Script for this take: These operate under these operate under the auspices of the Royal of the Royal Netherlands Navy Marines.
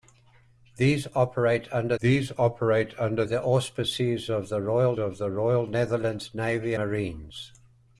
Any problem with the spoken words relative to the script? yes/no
no